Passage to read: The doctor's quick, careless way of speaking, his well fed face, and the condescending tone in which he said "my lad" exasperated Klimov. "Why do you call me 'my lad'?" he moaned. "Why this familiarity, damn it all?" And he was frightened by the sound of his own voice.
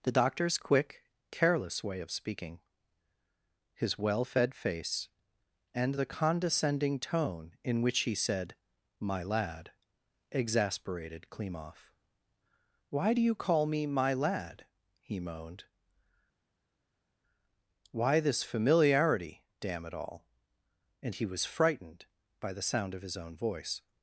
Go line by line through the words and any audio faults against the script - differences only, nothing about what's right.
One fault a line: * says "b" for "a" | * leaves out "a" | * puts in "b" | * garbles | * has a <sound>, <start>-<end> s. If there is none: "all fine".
all fine